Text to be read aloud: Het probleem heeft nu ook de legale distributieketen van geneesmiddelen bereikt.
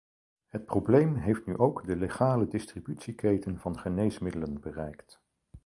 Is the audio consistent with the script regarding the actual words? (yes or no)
yes